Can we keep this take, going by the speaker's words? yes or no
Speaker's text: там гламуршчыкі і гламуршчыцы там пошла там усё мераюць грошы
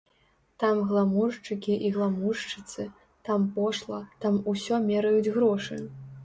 yes